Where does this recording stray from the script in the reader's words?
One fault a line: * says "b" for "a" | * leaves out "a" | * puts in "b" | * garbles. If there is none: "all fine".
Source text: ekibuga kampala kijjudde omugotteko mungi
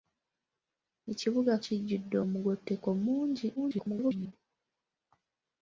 * leaves out "kampala"
* garbles